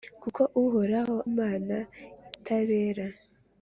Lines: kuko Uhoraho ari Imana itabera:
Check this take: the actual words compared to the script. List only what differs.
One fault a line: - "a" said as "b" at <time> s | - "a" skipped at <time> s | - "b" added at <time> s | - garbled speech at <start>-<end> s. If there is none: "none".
- "ari" skipped at 1.2 s